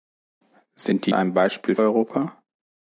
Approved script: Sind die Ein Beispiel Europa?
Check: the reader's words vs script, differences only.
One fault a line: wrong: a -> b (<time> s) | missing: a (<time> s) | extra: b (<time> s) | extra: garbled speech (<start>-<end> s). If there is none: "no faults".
no faults